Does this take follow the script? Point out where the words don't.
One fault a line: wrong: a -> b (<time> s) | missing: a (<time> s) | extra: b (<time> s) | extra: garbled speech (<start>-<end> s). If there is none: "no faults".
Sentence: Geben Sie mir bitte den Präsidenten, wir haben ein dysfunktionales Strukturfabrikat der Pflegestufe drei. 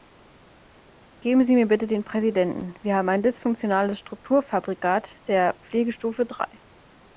no faults